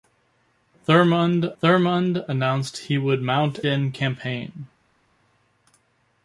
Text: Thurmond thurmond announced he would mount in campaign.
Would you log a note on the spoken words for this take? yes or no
no